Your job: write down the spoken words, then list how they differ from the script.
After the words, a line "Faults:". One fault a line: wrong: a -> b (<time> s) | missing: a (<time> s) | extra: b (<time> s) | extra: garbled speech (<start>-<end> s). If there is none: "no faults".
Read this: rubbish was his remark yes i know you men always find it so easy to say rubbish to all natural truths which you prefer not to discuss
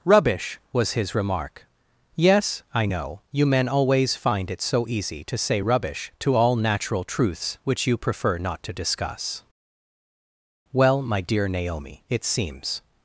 rubbish was his remark yes i know you men always find it so easy to say rubbish to all natural truths which you prefer not to discuss well my dear naomi it seems
Faults:
extra: well my dear naomi it seems (10.7 s)